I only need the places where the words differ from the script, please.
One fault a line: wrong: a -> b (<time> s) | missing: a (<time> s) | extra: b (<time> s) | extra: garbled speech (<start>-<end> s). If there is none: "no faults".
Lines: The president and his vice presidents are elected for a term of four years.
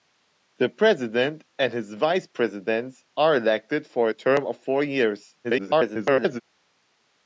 extra: garbled speech (5.4-6.4 s)